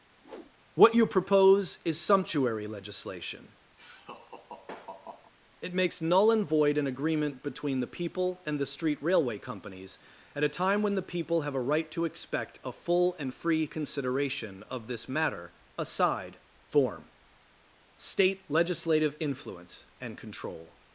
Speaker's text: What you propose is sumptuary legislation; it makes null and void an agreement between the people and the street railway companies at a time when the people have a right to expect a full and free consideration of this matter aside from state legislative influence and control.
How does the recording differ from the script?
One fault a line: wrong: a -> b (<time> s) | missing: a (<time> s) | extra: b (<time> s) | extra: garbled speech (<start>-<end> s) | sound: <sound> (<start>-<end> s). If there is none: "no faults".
sound: whoosh (0.2-0.6 s)
sound: laugh (3.8-5.3 s)
wrong: from -> form (16.7 s)